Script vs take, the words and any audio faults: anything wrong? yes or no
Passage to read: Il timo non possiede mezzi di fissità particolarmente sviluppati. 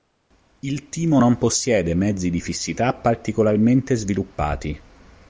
no